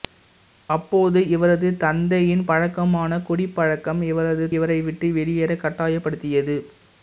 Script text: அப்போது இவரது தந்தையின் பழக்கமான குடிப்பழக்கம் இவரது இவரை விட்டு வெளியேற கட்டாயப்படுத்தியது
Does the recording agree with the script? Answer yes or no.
yes